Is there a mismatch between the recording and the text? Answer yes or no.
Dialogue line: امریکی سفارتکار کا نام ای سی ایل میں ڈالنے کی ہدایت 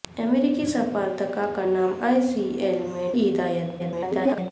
yes